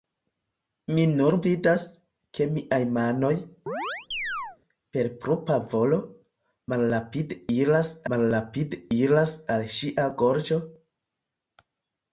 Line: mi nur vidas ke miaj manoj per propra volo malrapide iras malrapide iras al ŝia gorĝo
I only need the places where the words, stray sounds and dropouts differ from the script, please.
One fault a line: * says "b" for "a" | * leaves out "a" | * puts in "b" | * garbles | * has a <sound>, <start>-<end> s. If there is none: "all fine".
* has a chirp, 3.7-4.6 s